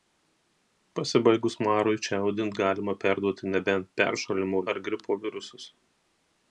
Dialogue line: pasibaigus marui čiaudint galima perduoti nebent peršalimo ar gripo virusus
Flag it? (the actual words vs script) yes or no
no